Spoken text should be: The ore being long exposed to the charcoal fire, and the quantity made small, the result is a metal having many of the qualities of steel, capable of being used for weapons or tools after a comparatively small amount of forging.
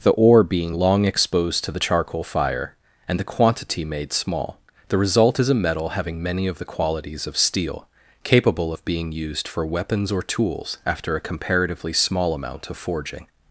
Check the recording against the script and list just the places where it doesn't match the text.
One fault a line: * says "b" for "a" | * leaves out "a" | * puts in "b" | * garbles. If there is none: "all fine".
all fine